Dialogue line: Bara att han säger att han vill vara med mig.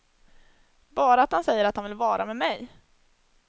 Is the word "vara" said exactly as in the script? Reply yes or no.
yes